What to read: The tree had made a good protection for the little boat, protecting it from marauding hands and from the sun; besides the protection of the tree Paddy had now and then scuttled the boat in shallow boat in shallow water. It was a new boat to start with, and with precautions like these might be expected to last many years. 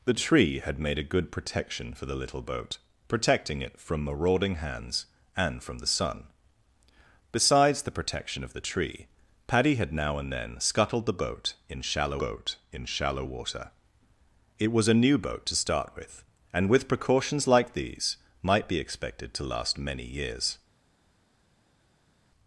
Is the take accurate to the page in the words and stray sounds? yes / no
yes